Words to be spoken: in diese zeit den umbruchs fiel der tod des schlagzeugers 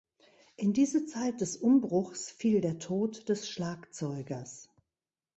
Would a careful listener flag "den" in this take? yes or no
yes